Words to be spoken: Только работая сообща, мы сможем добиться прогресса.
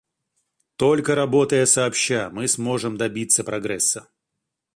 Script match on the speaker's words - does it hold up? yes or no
yes